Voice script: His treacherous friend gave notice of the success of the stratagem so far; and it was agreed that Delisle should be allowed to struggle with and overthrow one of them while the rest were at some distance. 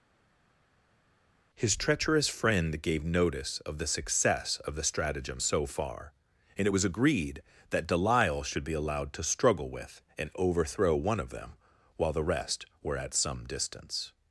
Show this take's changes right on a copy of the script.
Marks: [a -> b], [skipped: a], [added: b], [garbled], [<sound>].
His treacherous friend gave notice of the success of the stratagem so far; and it was agreed that Delisle should be allowed to struggle with and overthrow one of them while the rest were at some distance.